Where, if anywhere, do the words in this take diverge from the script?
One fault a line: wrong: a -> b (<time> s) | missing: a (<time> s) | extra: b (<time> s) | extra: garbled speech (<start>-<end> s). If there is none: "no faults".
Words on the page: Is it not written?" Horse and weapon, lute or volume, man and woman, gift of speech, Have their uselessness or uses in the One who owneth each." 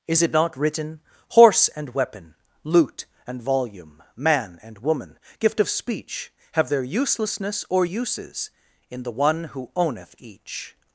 wrong: or -> and (3.3 s)